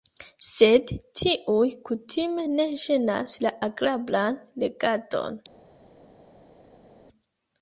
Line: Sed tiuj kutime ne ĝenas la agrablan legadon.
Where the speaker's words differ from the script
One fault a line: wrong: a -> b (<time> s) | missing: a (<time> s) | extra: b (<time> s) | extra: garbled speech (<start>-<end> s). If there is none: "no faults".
no faults